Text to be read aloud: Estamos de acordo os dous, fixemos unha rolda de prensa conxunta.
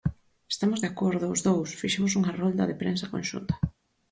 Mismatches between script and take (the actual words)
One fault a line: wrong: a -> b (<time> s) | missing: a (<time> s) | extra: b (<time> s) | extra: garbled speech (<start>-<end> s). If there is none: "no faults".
no faults